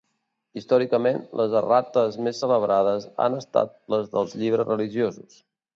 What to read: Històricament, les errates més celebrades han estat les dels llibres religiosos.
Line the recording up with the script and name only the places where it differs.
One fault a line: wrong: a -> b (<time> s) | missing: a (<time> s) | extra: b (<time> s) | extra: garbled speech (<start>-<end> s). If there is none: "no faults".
no faults